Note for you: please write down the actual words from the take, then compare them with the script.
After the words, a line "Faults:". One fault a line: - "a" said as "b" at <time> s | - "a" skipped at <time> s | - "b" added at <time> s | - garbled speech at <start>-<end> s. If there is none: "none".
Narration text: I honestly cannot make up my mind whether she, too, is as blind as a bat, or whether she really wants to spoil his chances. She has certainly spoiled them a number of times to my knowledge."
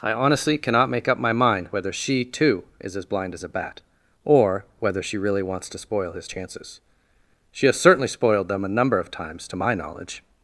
I honestly cannot make up my mind whether she, too, is as blind as a bat, or whether she really wants to spoil his chances. She has certainly spoiled them a number of times to my knowledge."
Faults:
none